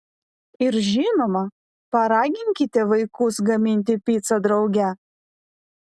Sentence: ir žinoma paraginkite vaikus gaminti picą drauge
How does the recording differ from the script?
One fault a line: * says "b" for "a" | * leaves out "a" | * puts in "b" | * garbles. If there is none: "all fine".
all fine